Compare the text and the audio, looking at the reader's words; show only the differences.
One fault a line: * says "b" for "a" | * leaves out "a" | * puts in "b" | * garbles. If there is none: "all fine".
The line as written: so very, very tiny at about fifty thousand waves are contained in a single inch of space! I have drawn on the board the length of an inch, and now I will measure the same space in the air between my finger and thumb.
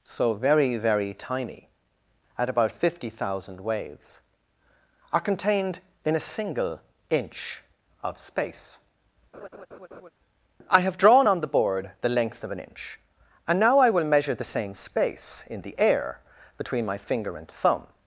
all fine